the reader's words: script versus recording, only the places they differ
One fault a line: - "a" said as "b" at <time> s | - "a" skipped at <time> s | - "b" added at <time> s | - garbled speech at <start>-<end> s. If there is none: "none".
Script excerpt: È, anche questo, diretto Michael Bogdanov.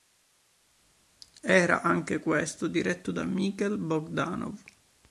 - "È" said as "Era" at 1.4 s
- "da" added at 3.1 s